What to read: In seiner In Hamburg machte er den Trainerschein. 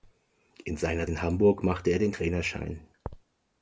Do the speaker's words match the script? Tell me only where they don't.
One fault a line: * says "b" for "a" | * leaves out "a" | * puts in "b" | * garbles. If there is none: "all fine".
all fine